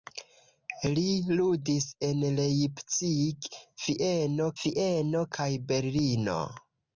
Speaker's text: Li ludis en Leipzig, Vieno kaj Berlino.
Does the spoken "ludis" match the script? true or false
true